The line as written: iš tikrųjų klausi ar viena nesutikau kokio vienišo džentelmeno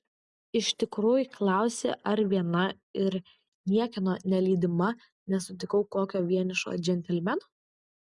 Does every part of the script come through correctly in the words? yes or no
no